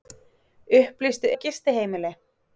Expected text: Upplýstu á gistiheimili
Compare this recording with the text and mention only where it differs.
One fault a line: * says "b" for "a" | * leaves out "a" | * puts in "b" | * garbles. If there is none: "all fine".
all fine